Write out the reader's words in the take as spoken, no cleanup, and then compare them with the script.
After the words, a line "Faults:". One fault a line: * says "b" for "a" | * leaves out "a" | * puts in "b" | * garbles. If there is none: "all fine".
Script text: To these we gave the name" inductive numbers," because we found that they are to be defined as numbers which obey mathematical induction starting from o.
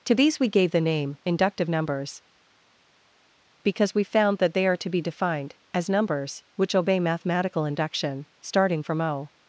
To these we gave the name" inductive numbers," because we found that they are to be defined as numbers which obey mathematical induction starting from o.
Faults:
all fine